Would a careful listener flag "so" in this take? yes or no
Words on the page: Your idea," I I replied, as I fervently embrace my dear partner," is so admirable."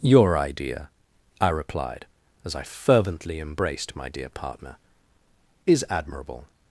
yes